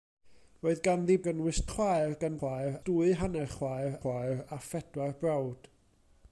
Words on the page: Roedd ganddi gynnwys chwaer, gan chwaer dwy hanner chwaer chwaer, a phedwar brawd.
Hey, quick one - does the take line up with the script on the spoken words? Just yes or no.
yes